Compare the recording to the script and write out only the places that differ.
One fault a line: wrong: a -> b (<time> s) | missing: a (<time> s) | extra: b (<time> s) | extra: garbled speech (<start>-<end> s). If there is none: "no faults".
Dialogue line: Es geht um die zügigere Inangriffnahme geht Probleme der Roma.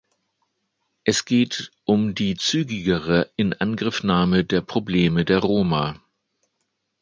wrong: geht -> der (4.4 s)